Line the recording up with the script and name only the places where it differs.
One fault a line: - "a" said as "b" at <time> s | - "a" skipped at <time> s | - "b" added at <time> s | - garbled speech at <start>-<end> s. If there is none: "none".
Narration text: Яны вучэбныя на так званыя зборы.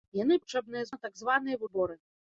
none